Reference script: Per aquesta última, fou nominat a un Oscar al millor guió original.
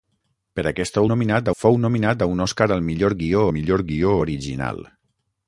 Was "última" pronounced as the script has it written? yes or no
no